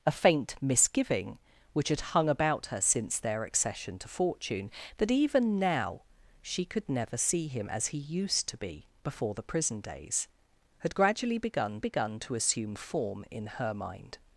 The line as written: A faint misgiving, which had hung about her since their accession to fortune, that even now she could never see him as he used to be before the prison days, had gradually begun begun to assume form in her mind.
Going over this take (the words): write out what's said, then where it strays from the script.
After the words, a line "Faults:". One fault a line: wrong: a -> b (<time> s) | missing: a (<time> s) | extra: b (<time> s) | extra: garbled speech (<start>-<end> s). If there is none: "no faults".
A faint misgiving, which had hung about her since their accession to fortune, that even now she could never see him as he used to be before the prison days, had gradually begun begun to assume form in her mind.
Faults:
no faults